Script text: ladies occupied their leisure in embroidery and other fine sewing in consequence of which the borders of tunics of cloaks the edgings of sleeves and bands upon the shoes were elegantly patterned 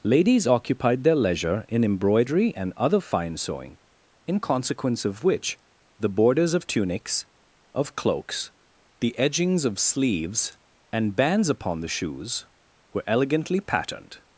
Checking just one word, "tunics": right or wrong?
right